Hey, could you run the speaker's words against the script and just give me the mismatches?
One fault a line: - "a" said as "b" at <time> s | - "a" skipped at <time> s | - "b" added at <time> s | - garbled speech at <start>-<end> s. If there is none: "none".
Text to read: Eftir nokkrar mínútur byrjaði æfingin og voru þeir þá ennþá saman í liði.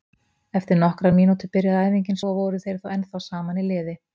none